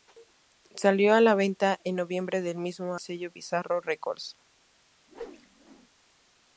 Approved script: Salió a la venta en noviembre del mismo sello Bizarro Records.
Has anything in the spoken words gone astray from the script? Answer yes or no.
no